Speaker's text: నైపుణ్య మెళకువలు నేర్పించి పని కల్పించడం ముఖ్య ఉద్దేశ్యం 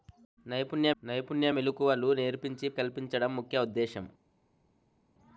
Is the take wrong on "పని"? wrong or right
wrong